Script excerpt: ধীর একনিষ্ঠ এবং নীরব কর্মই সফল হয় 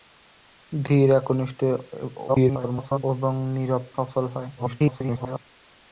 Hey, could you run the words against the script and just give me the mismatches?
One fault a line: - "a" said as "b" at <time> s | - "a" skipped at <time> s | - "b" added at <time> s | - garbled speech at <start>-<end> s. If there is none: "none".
- garbled speech at 2.3-3.0 s
- "কর্মই" skipped at 3.8 s
- garbled speech at 4.6-5.4 s